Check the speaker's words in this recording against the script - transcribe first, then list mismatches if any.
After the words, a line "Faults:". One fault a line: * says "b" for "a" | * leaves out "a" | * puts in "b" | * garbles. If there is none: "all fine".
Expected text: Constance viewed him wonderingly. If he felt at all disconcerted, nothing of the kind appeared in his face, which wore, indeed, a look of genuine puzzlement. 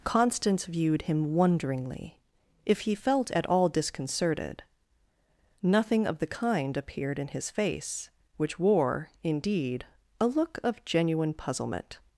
Constance viewed him wonderingly. If he felt at all disconcerted, nothing of the kind appeared in his face, which wore, indeed, a look of genuine puzzlement.
Faults:
all fine